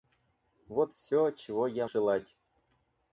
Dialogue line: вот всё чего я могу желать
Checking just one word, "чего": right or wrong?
right